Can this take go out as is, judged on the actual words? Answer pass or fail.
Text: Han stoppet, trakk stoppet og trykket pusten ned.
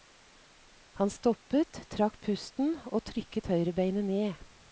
fail